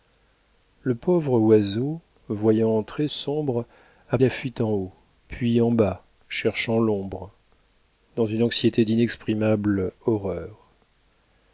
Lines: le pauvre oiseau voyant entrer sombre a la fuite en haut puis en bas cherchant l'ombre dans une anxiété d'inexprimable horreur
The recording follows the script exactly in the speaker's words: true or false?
true